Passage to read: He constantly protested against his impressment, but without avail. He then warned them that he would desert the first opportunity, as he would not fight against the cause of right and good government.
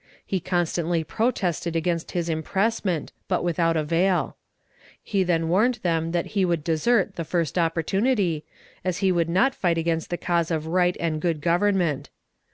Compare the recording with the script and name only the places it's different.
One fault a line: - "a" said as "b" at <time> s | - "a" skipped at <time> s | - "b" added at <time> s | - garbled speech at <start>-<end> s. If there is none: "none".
none